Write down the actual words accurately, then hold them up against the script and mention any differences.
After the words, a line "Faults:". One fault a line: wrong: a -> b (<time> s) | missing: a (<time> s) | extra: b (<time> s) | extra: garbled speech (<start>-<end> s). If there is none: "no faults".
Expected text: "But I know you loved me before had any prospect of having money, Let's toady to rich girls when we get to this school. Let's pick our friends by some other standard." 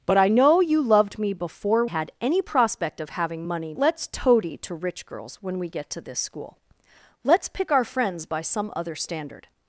"But I know you loved me before had any prospect of having money, Let's toady to rich girls when we get to this school. Let's pick our friends by some other standard."
Faults:
no faults